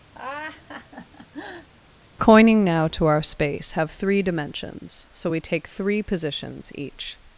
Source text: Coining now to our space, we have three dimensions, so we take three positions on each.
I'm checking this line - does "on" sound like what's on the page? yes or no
no